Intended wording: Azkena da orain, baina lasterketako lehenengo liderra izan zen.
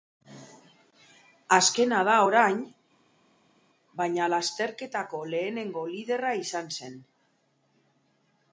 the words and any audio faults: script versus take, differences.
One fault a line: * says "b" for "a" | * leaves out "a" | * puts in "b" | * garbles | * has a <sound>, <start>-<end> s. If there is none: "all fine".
all fine